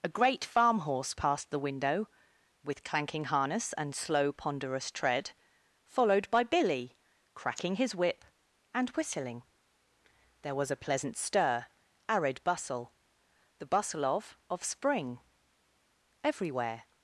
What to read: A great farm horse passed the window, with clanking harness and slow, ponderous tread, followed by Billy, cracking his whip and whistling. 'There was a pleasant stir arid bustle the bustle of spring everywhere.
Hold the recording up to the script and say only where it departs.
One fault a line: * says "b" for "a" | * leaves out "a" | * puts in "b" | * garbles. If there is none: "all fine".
* puts in "of"